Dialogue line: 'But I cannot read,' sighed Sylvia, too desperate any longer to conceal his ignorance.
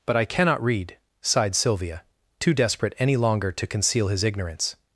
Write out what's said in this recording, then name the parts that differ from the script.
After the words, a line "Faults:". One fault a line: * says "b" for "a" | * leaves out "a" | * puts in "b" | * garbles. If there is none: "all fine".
'But I cannot read,' sighed Sylvia, too desperate any longer to conceal his ignorance.
Faults:
all fine